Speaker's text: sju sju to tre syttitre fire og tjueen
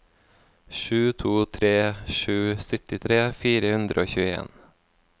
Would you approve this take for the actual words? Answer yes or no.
no